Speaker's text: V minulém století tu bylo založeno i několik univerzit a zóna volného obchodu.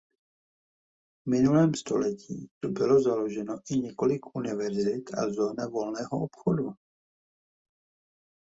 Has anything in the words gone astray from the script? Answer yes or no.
no